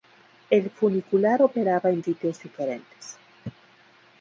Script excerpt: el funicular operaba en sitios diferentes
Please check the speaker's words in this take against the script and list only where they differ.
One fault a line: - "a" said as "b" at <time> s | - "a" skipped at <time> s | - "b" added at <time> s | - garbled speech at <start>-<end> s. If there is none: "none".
none